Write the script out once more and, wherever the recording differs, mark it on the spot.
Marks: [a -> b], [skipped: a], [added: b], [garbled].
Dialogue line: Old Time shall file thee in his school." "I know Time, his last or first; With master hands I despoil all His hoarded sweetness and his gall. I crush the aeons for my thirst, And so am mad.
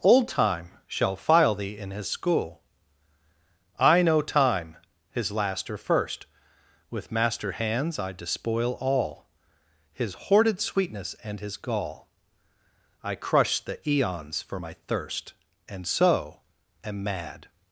Old Time shall file thee in his school." "I know Time, his last or first; With master hands I despoil all His hoarded sweetness and his gall. I crush the aeons for my thirst, And so am mad.